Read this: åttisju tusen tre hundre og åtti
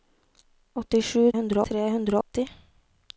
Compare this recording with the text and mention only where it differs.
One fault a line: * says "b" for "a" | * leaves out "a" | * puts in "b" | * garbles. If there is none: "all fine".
* says "hundre" for "tusen"
* leaves out "og"